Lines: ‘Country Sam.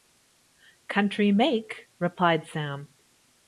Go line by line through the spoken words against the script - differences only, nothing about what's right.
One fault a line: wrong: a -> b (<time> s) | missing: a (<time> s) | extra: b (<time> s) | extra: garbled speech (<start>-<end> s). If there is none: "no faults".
extra: make replied (1.3 s)